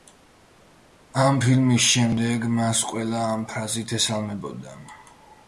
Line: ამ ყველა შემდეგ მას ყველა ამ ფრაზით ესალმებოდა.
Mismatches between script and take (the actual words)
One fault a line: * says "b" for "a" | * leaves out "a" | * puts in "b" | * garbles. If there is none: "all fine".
* says "ფილმის" for "ყველა"